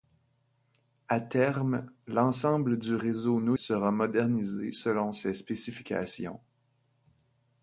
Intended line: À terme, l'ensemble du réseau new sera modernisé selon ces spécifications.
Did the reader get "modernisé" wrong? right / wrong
right